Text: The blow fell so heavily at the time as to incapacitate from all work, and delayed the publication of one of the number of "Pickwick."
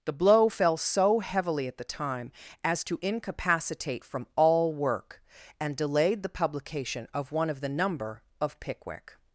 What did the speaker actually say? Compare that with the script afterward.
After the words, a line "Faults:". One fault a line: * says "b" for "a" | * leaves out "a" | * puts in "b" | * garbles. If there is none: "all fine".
The blow fell so heavily at the time as to incapacitate from all work, and delayed the publication of one of the number of "Pickwick."
Faults:
all fine